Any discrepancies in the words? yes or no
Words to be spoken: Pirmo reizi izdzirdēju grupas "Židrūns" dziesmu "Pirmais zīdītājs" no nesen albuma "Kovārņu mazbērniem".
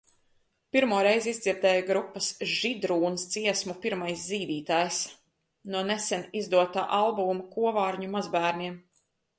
yes